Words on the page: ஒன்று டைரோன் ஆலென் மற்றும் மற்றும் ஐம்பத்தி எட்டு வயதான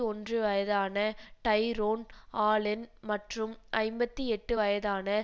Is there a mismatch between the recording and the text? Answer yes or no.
yes